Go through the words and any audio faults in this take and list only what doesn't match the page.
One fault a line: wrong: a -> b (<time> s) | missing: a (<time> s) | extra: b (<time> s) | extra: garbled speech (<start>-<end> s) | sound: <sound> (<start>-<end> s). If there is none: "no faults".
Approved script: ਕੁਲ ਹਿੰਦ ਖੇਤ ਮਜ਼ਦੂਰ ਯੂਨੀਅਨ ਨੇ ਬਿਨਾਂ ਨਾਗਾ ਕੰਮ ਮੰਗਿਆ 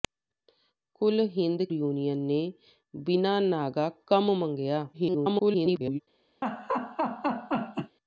missing: ਖੇਤ ਮਜ਼ਦੂਰ (1.6 s)
extra: garbled speech (4.9-6.0 s)
sound: laugh (6.4-8.0 s)